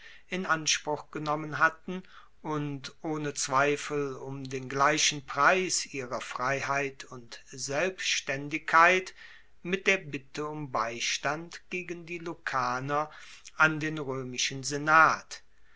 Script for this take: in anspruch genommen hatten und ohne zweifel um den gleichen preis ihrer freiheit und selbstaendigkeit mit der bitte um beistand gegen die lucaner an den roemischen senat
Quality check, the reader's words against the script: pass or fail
pass